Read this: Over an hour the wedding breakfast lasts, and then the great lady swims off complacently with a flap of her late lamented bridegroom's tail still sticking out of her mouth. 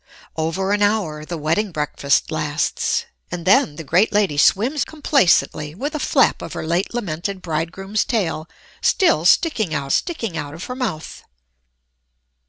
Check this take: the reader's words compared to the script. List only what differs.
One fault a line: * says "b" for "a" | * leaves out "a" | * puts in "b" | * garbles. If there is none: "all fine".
* leaves out "off"
* puts in "sticking out"